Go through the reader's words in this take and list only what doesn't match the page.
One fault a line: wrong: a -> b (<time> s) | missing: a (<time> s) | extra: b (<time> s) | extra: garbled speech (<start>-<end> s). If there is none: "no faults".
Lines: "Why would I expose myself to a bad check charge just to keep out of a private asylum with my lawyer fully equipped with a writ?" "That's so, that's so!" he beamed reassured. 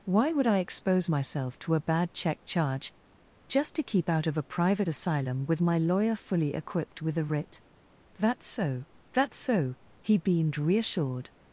no faults